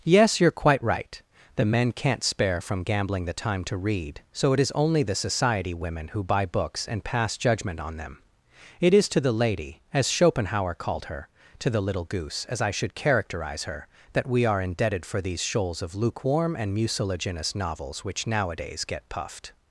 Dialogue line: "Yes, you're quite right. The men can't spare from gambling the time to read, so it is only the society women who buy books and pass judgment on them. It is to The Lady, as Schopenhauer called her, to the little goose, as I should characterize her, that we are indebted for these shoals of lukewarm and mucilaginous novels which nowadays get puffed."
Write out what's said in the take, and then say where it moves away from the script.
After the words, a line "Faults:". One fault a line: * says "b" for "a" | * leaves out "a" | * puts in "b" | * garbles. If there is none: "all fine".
"Yes, you're quite right. The men can't spare from gambling the time to read, so it is only the society women who buy books and pass judgment on them. It is to The Lady, as Schopenhauer called her, to the little goose, as I should characterize her, that we are indebted for these shoals of lukewarm and mucilaginous novels which nowadays get puffed."
Faults:
all fine